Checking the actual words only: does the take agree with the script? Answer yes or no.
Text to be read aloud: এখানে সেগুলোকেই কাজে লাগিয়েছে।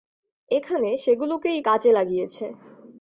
yes